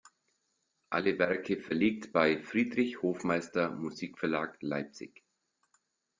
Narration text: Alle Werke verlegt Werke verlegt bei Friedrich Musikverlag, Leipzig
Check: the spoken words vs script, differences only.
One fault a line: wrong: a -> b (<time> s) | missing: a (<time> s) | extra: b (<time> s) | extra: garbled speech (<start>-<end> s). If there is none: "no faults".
missing: Werke verlegt (2.1 s)
extra: Hofmeister (3.0 s)